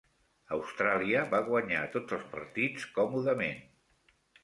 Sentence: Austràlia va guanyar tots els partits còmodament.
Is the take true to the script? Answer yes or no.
yes